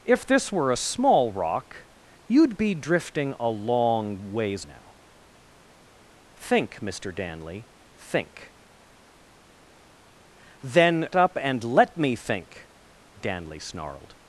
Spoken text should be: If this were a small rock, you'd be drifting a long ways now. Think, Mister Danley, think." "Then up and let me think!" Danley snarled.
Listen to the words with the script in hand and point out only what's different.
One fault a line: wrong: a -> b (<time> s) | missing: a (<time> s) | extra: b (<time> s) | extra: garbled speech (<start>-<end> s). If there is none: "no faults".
no faults